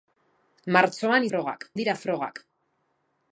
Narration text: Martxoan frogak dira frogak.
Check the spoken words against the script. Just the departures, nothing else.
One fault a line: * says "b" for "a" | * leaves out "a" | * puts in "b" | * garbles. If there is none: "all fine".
all fine